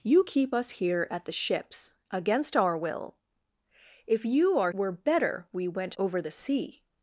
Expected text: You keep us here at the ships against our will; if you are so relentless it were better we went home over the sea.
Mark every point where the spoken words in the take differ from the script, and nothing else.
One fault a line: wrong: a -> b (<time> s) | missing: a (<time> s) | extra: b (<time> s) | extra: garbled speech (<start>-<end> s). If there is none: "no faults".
missing: so relentless it (4.7 s)
missing: home (5.9 s)